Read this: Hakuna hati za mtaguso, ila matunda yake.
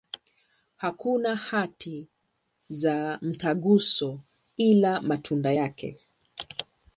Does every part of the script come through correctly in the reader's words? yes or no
yes